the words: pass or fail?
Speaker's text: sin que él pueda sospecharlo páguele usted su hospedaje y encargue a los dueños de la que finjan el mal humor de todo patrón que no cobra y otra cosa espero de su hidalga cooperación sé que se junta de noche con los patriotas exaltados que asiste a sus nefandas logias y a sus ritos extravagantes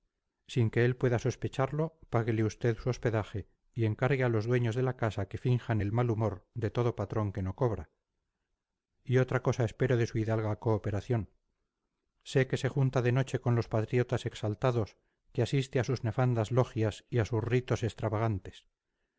fail